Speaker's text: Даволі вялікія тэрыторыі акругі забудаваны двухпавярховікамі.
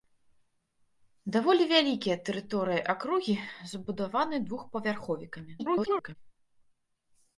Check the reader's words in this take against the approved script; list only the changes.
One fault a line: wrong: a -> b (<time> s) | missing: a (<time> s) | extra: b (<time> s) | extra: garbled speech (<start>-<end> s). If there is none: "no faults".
extra: garbled speech (5.6-6.2 s)